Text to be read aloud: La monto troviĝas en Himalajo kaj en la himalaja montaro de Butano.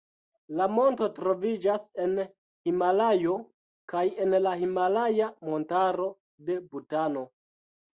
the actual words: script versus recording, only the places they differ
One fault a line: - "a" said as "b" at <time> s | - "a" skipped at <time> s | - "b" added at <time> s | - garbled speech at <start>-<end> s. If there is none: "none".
none